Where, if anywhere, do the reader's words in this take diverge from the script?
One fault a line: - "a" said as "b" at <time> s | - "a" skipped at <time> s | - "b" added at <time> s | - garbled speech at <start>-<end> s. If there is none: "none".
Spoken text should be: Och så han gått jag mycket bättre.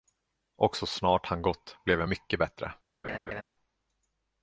- "snart" added at 0.8 s
- "blev" added at 1.9 s